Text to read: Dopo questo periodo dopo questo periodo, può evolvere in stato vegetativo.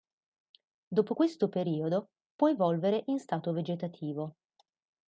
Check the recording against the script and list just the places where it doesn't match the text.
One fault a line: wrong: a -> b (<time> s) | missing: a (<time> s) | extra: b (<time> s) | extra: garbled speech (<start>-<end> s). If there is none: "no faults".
missing: dopo questo periodo (2.1 s)